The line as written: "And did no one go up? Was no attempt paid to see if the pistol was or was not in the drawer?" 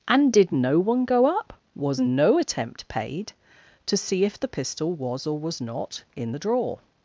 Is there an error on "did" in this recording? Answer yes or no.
no